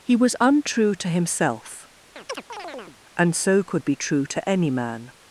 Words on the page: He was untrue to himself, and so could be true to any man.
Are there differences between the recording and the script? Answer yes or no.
no